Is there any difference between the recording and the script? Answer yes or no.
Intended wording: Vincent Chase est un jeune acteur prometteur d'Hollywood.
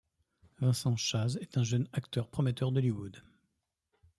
no